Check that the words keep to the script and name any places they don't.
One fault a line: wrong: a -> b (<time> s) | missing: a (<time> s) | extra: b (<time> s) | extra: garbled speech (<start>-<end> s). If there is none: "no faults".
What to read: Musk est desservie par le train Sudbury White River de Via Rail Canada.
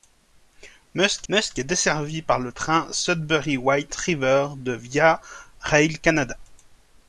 extra: musk (1.3 s)